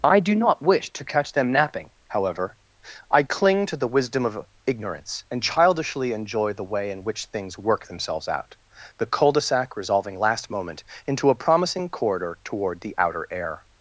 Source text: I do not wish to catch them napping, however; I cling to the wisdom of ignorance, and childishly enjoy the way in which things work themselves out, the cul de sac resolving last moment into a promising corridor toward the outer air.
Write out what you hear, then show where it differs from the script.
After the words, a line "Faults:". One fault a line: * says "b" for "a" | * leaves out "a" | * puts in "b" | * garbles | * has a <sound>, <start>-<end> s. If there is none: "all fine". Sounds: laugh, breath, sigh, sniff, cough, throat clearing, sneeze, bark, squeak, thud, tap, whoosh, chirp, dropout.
I do not wish to catch them napping, however; I cling to the wisdom of ignorance, and childishly enjoy the way in which things work themselves out, the cul de sac resolving last moment into a promising corridor toward the outer air.
Faults:
all fine